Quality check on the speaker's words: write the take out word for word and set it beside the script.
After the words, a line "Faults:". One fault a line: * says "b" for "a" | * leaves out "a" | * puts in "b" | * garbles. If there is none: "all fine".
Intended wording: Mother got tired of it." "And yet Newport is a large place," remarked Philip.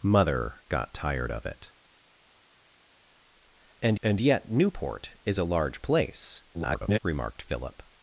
Mother got tired of it." "And and yet Newport is a large place," [garbled] remarked Philip.
Faults:
* puts in "and"
* garbles